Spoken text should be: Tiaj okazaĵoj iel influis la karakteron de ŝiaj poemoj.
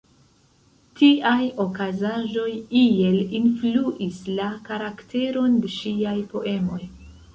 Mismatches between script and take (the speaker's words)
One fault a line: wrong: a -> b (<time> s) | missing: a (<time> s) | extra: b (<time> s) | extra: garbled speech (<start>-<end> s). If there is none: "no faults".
no faults